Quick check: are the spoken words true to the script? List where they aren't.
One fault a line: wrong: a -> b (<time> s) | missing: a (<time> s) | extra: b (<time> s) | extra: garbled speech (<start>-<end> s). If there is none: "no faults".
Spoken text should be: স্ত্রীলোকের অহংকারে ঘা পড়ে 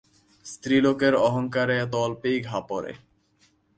extra: এত অল্পেই (1.8 s)